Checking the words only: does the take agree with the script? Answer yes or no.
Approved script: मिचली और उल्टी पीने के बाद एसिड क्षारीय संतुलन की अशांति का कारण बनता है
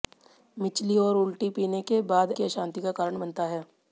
no